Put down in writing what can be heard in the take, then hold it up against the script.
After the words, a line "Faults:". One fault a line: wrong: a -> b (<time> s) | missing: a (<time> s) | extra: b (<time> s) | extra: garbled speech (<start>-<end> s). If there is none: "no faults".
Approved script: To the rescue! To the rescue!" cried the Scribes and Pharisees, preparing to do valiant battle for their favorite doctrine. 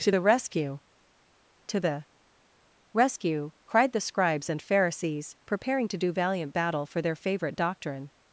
To the rescue! To the rescue!" cried the Scribes and Pharisees, preparing to do valiant battle for their favorite doctrine.
Faults:
no faults